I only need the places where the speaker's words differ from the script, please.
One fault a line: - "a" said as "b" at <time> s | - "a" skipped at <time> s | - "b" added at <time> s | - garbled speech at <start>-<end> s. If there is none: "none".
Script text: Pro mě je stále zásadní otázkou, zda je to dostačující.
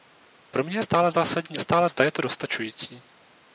- "otázkou" said as "stále" at 1.6 s